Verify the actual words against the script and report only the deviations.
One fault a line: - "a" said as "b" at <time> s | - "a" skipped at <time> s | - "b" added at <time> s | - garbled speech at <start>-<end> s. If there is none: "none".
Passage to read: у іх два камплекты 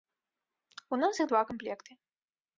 - "нас" added at 1.0 s